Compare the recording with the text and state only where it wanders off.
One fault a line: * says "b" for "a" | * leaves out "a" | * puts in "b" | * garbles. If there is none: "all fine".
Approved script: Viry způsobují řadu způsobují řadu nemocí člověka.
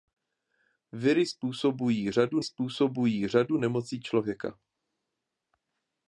all fine